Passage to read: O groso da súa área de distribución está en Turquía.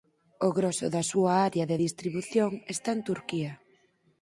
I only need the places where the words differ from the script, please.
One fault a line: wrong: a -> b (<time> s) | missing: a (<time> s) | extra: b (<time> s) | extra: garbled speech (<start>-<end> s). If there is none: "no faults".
no faults